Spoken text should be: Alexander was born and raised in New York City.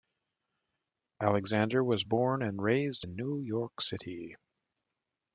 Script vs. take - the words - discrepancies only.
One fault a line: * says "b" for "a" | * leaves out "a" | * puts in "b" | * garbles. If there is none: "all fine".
all fine